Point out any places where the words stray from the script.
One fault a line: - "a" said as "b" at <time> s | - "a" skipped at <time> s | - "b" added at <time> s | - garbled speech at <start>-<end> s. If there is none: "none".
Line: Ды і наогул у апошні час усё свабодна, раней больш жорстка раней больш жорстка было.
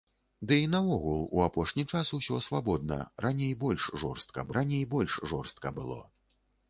none